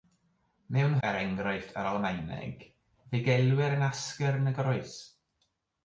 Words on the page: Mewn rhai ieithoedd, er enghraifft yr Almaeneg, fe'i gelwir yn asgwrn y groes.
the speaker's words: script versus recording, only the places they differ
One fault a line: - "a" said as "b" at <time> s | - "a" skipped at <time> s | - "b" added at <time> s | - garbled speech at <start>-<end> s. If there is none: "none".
- "rhai ieithoedd" skipped at 0.9 s